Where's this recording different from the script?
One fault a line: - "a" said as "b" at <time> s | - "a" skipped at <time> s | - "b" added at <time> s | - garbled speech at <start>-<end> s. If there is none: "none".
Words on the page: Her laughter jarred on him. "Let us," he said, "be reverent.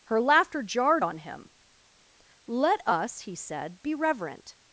none